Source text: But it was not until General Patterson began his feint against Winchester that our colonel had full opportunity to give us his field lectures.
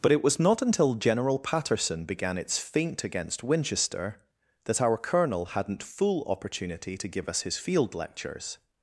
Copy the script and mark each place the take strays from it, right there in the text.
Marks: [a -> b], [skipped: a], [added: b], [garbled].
But it was not until General Patterson began [his -> its] feint against Winchester that our colonel [had -> hadn't] full opportunity to give us his field lectures.